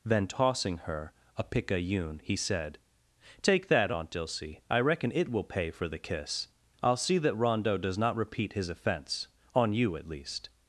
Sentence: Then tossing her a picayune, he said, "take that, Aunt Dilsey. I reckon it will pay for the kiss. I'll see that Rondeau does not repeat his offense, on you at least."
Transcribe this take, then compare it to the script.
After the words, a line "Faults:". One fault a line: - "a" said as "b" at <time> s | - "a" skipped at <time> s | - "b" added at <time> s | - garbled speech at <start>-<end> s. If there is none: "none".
Then tossing her a picayune, he said, "take that, Aunt Dilsey. I reckon it will pay for the kiss. I'll see that Rondeau does not repeat his offense, on you at least."
Faults:
none